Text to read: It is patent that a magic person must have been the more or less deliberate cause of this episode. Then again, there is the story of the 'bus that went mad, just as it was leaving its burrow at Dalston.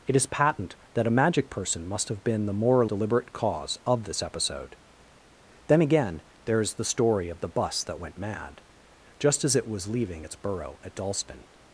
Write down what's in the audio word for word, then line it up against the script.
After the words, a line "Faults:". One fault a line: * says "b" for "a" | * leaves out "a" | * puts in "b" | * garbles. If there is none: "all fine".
It is patent that a magic person must have been the more or deliberate cause of this episode. Then again, there is the story of the 'bus that went mad, just as it was leaving its burrow at Dalston.
Faults:
* leaves out "less"